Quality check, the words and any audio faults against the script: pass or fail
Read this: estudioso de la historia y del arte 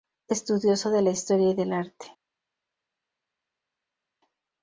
pass